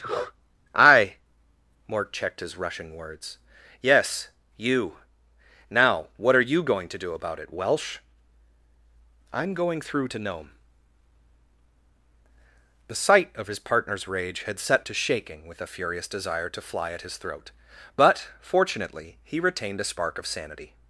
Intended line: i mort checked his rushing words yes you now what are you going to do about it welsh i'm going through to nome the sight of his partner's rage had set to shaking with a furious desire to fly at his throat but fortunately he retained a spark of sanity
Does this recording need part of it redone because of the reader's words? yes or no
no